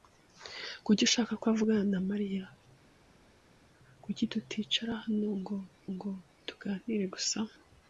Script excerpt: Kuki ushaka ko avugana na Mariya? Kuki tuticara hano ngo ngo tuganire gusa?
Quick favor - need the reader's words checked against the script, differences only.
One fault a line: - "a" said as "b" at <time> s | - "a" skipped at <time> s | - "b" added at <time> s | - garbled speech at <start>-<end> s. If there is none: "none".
none